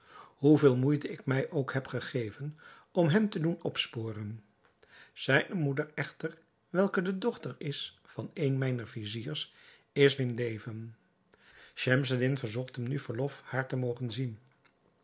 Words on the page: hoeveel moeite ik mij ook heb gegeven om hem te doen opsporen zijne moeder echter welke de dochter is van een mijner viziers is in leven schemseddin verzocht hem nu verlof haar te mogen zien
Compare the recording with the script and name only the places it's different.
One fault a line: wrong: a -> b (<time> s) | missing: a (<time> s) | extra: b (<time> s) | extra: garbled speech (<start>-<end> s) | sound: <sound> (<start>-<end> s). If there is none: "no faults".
no faults